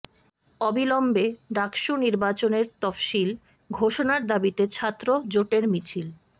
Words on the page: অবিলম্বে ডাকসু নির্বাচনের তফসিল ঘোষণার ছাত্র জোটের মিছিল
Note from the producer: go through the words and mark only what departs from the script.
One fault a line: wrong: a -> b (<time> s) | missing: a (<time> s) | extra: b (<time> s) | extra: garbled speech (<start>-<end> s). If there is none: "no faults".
extra: দাবিতে (4.3 s)